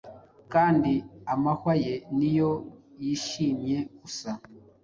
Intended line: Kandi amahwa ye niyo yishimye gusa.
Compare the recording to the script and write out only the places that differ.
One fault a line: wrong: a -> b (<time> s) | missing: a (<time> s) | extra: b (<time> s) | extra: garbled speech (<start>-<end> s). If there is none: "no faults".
no faults